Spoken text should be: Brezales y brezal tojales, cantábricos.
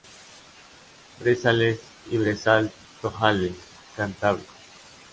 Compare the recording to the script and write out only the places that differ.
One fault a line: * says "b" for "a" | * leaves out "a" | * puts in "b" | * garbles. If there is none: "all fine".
all fine